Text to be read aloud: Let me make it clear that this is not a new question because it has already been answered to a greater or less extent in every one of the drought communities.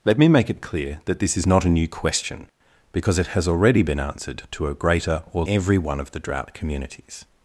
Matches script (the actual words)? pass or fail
fail